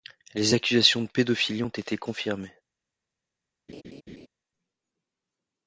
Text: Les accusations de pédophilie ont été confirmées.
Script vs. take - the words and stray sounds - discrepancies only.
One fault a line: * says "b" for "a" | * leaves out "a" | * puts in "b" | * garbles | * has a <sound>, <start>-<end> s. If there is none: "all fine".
* has a laugh, 3.7-4.3 s